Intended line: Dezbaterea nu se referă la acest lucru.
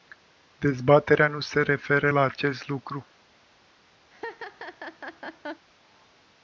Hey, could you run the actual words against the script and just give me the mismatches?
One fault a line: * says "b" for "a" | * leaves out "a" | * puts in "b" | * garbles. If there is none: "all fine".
all fine